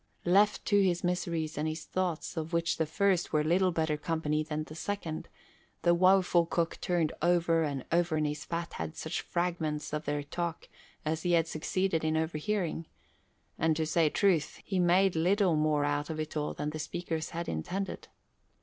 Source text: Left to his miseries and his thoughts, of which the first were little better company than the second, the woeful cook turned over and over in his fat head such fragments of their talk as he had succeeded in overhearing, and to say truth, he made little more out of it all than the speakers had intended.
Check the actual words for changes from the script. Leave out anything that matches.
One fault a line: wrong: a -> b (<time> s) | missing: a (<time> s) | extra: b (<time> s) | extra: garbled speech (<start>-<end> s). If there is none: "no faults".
no faults